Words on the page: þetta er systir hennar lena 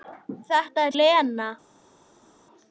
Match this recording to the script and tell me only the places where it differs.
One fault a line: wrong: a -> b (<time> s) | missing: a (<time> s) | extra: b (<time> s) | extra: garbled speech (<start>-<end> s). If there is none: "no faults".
missing: systir hennar (1.0 s)